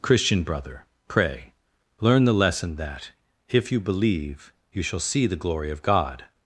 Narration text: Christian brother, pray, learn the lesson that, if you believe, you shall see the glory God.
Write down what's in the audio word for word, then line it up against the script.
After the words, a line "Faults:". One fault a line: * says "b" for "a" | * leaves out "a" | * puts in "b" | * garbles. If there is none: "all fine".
Christian brother, pray, learn the lesson that, if you believe, you shall see the glory of God.
Faults:
* puts in "of"